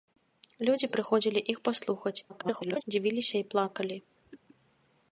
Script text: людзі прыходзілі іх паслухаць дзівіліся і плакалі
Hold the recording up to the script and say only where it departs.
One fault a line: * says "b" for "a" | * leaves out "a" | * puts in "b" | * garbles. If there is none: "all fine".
* garbles